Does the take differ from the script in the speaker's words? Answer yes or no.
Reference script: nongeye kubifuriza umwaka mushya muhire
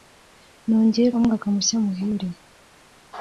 yes